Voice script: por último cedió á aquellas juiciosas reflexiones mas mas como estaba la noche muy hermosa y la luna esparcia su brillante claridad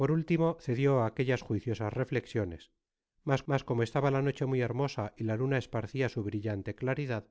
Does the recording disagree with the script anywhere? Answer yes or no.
no